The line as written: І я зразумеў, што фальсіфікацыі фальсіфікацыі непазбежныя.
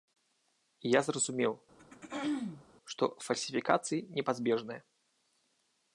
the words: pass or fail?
fail